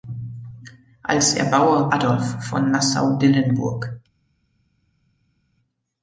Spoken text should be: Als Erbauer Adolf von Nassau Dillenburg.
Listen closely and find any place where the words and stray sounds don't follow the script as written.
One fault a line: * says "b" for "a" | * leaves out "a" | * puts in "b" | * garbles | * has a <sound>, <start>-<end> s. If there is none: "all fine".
all fine